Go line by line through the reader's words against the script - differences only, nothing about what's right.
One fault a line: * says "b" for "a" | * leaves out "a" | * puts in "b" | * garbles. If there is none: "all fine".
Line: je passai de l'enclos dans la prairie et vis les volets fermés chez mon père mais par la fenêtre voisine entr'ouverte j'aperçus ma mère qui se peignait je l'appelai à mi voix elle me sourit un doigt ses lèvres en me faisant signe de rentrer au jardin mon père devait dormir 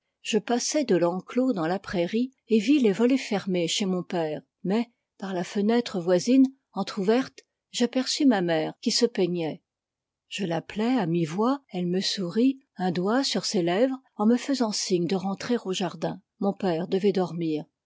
* puts in "sur"